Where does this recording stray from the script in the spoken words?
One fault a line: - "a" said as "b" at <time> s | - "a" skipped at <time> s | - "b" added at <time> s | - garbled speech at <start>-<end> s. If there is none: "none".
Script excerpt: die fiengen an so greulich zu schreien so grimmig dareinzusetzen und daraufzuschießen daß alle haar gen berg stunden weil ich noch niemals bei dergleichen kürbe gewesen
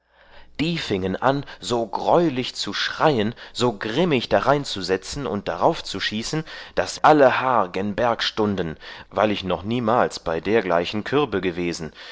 none